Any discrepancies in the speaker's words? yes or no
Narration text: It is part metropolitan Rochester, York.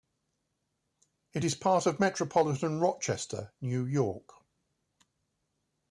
yes